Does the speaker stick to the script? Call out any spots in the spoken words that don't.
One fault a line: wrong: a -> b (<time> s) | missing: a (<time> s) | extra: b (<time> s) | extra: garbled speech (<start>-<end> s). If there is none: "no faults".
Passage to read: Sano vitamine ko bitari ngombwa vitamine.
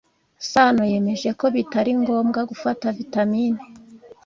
wrong: vitamine -> yemeje (0.9 s)
extra: gufata (2.5 s)